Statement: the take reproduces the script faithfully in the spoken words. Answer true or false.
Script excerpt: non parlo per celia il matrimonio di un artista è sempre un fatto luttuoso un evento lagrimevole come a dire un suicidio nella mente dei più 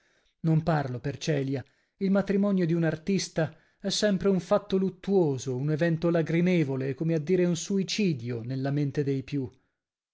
true